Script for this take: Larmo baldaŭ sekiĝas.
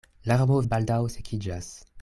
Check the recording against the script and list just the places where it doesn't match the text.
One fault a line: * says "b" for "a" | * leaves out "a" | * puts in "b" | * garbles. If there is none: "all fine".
all fine